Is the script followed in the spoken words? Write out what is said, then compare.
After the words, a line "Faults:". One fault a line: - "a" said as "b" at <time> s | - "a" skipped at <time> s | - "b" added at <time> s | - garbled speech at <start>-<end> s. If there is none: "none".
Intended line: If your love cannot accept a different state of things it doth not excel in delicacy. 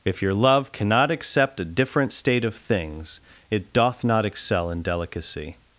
If your love cannot accept a different state of things it doth not excel in delicacy.
Faults:
none